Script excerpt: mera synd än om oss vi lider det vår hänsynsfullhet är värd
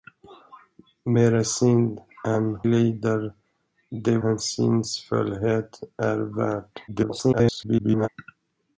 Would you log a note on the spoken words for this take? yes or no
yes